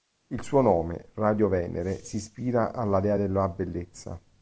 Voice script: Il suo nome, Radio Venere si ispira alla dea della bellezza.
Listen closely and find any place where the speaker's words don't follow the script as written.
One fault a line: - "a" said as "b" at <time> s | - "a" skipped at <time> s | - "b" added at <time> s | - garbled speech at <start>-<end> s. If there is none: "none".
none